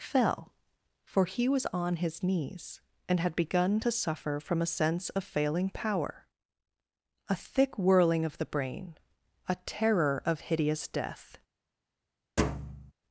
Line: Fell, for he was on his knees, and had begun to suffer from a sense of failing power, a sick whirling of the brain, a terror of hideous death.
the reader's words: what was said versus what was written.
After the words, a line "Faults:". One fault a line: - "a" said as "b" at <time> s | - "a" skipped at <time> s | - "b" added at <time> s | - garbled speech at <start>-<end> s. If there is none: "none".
Fell, for he was on his knees, and had begun to suffer from a sense of failing power, a thick whirling of the brain, a terror of hideous death.
Faults:
- "sick" said as "thick" at 7.4 s